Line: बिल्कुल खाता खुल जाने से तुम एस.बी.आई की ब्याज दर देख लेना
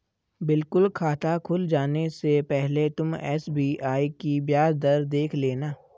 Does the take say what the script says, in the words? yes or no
no